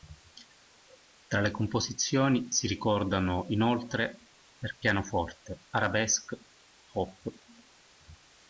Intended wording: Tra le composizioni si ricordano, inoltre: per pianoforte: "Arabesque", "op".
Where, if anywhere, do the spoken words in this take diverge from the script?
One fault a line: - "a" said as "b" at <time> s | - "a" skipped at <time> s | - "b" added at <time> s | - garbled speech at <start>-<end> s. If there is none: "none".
none